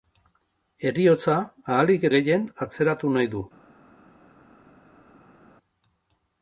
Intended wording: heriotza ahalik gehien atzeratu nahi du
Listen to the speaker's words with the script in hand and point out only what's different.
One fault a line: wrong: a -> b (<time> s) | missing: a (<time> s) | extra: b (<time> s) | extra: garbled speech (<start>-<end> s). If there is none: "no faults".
no faults